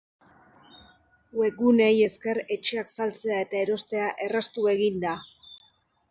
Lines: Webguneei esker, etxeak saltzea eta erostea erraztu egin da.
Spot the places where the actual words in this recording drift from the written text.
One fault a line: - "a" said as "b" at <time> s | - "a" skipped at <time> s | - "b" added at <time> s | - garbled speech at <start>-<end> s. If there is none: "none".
none